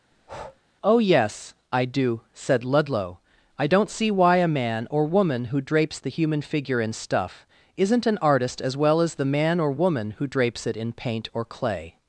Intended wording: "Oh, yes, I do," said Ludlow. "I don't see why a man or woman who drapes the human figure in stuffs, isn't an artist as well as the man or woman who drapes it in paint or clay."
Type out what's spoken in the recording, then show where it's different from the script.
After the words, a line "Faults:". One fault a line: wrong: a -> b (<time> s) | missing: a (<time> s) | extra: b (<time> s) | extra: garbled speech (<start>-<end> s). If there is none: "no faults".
"Oh, yes, I do," said Ludlow. "I don't see why a man or woman who drapes the human figure in stuff, isn't an artist as well as the man or woman who drapes it in paint or clay."
Faults:
wrong: stuffs -> stuff (6.9 s)